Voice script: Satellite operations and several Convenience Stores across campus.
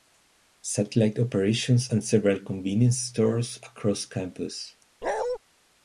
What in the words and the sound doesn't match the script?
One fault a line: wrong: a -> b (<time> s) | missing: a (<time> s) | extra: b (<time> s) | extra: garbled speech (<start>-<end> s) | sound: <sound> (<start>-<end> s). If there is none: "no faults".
sound: bark (5.0-5.4 s)